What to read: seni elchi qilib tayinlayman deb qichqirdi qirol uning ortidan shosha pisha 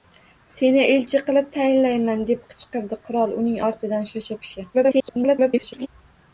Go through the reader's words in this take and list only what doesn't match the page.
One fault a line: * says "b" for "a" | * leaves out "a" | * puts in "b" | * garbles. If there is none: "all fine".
* garbles